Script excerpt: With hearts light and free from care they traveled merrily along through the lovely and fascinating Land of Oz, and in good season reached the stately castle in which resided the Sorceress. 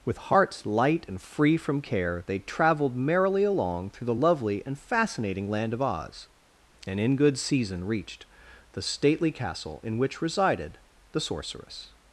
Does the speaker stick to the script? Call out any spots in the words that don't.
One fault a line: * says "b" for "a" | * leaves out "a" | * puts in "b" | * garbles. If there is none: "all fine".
all fine